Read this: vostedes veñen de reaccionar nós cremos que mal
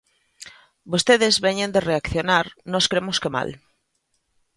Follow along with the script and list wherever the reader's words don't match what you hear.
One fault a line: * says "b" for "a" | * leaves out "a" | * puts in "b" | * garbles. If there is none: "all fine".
all fine